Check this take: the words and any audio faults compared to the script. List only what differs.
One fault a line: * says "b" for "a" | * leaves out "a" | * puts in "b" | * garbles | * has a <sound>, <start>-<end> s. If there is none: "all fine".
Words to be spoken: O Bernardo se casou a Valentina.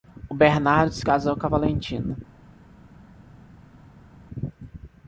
* puts in "com"